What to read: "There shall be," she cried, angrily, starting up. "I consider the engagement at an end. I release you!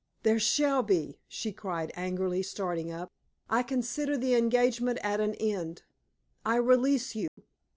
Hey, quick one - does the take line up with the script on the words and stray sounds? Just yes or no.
no